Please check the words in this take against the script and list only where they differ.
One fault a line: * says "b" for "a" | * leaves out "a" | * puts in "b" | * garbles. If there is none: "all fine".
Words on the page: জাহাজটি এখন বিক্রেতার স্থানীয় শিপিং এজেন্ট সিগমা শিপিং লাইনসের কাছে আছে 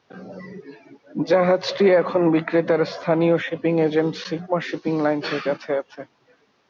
all fine